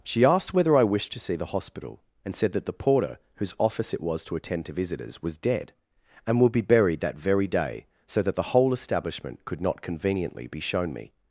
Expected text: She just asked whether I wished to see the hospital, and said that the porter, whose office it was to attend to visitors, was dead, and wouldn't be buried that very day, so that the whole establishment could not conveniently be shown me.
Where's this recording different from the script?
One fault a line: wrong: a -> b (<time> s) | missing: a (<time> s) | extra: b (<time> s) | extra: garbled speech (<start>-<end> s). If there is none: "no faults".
missing: just (0.2 s)
wrong: wouldn't -> would (6.4 s)